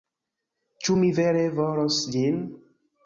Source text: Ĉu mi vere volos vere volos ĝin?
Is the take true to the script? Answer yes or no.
no